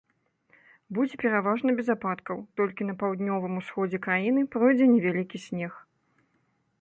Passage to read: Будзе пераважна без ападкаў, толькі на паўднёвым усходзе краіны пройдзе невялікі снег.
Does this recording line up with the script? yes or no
yes